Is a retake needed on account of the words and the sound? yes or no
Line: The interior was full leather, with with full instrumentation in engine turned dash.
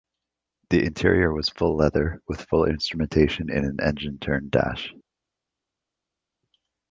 yes